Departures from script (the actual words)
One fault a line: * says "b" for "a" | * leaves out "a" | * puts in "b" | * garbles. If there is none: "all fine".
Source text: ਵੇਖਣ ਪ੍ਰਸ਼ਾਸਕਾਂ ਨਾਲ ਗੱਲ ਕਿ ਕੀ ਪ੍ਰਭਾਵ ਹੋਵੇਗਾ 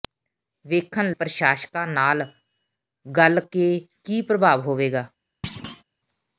all fine